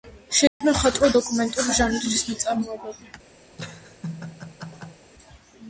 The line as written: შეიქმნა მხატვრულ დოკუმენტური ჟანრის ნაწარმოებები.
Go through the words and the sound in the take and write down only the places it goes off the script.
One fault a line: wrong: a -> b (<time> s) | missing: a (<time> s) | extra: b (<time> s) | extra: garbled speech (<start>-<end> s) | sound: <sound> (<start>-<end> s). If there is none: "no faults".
sound: dropout (0.5-0.6 s)
sound: laugh (3.5-5.1 s)